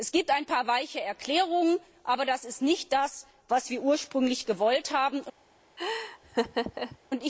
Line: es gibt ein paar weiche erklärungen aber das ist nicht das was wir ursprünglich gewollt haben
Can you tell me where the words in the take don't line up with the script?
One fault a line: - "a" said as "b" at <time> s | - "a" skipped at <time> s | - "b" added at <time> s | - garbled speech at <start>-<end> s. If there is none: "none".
none